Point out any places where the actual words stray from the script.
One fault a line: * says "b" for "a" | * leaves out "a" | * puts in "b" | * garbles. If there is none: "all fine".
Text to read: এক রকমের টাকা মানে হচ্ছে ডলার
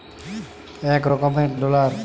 * leaves out "টাকা মানে হচ্ছে"